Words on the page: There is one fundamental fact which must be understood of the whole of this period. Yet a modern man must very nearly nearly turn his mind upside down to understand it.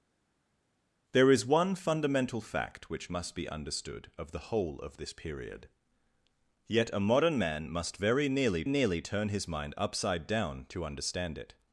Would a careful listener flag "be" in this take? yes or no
no